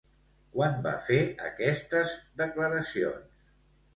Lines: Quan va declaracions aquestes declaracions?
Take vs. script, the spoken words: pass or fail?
fail